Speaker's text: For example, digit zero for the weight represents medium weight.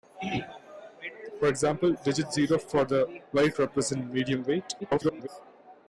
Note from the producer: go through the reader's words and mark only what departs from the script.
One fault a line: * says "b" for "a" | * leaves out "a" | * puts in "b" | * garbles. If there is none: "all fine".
* garbles